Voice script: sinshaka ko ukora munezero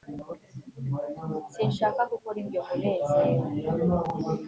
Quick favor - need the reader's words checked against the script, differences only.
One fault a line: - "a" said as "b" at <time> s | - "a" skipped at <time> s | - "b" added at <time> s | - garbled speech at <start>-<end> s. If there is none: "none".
- "ibyo" added at 2.4 s